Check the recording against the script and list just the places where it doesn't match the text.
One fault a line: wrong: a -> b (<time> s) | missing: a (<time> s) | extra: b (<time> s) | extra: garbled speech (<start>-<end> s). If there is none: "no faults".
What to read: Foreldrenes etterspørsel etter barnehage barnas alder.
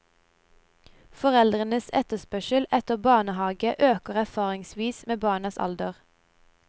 extra: øker erfaringsvis med (3.9 s)